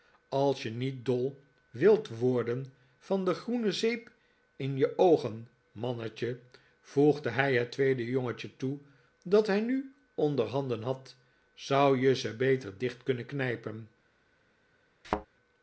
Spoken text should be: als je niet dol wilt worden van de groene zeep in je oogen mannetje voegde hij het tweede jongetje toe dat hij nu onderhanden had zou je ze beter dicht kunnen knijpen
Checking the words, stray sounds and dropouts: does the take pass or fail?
fail